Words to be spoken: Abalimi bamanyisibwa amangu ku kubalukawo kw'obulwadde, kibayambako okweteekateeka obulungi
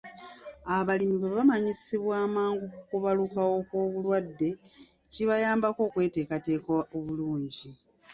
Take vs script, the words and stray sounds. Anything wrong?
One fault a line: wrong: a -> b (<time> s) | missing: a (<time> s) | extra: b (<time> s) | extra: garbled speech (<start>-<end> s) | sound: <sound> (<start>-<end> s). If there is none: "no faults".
extra: bwe (1.2 s)